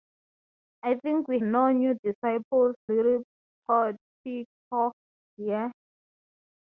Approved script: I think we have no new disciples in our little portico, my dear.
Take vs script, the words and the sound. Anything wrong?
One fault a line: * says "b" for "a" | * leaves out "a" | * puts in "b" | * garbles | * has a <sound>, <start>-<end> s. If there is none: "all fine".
* leaves out "have"
* leaves out "in our"
* leaves out "my"